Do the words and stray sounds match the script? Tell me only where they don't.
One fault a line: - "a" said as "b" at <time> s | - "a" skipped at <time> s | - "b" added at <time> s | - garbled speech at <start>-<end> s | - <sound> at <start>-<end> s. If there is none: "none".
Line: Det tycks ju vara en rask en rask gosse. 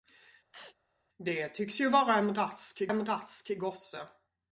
- sneeze at 0.5-0.8 s